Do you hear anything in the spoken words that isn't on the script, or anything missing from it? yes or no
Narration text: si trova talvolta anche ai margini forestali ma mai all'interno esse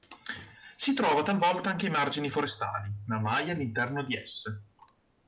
yes